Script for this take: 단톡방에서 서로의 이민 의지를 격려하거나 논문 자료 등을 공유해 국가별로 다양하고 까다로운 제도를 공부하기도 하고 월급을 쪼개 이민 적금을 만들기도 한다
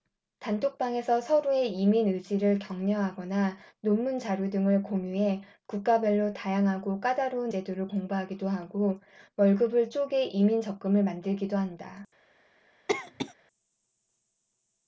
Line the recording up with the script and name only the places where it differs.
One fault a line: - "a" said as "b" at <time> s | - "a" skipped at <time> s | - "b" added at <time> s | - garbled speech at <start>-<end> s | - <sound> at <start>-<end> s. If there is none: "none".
- cough at 12.9-13.3 s